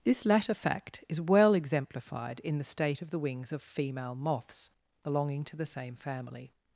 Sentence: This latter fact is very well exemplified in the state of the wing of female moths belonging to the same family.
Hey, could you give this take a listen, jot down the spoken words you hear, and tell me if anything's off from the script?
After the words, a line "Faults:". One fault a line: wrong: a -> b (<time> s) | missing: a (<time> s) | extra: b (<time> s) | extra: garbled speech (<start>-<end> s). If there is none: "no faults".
This latter fact is well exemplified in the state of the wings of female moths belonging to the same family.
Faults:
missing: very (1.2 s)
wrong: wing -> wings (3.2 s)